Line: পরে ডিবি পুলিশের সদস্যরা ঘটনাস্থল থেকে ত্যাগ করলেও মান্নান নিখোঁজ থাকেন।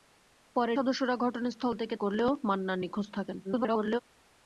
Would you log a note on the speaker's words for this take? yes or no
yes